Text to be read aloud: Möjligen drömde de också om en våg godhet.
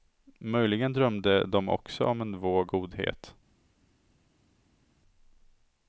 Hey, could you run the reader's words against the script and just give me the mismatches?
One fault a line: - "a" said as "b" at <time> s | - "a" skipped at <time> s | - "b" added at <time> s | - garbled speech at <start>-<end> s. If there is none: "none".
none